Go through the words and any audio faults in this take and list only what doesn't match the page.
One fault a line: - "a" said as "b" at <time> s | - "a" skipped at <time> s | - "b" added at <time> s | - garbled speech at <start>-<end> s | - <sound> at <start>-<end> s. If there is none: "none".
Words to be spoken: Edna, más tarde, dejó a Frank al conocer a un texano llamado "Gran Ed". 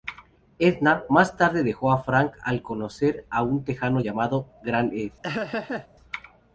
- laugh at 5.2-5.9 s